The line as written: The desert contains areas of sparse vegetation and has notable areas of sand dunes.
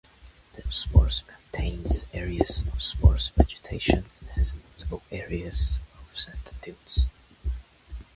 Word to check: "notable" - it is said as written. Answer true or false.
true